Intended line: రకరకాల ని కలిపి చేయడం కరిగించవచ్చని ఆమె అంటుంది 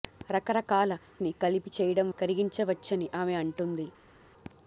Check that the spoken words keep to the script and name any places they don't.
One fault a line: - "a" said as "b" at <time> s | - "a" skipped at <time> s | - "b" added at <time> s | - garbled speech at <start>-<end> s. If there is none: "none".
none